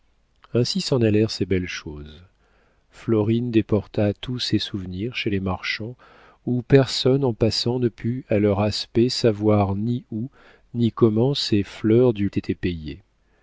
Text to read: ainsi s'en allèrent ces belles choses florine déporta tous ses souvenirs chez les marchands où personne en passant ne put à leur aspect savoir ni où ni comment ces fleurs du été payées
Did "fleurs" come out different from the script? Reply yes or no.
no